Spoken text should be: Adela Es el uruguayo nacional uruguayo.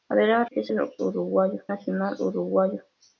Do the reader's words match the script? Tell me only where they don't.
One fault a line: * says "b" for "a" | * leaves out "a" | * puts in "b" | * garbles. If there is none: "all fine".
all fine